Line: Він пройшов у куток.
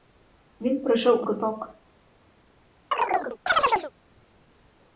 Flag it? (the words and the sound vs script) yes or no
yes